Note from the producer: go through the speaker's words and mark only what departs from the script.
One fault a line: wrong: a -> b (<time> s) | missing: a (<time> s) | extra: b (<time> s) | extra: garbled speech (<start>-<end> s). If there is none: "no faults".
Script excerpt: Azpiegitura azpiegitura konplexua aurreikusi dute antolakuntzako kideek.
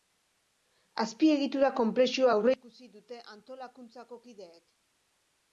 missing: azpiegitura (1.7 s)